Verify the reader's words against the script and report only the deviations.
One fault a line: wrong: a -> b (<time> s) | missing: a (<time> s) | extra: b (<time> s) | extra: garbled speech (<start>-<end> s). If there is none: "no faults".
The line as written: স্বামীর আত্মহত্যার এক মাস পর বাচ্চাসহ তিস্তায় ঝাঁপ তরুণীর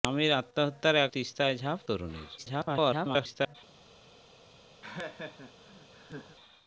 missing: মাস পর বাচ্চাসহ (1.1 s)
extra: garbled speech (2.4-3.6 s)